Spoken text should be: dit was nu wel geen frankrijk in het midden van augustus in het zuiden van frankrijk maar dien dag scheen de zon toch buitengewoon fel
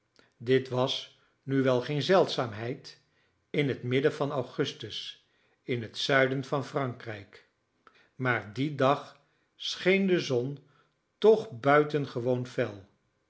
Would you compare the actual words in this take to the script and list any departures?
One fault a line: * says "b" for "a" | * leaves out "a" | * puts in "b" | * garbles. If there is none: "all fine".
* says "zeldzaamheid" for "frankrijk"